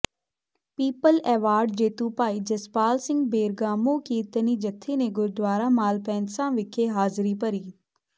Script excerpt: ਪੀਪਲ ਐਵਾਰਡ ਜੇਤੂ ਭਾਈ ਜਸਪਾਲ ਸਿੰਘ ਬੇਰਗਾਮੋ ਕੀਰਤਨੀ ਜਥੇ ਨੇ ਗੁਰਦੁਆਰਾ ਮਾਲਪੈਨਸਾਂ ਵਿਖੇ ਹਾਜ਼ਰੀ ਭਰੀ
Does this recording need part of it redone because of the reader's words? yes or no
no